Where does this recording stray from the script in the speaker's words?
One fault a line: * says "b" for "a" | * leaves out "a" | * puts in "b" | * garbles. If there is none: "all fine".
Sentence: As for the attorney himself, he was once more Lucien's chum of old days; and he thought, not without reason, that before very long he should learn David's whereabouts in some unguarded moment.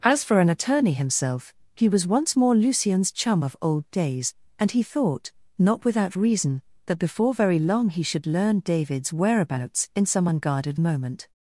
* says "an" for "the"